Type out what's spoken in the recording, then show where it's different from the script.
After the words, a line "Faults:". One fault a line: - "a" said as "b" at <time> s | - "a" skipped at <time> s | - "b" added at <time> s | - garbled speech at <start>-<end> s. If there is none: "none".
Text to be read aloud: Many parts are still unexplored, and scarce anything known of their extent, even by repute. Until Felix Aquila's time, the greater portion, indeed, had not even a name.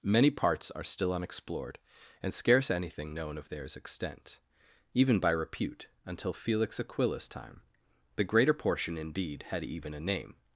Many parts are still unexplored, and scarce anything known of theirs extent, even by repute. Until Felix Aquila's time, the greater portion, indeed, had even a name.
Faults:
- "their" said as "theirs" at 3.5 s
- "not" skipped at 9.6 s